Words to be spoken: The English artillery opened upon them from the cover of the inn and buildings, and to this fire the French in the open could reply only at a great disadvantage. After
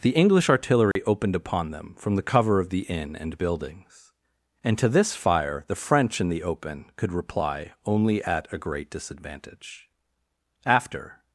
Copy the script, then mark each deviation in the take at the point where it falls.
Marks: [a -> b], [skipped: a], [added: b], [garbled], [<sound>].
The English artillery [dropout] opened upon them from the cover of the inn and buildings, and to this fire the French in the open could reply only at a great disadvantage. After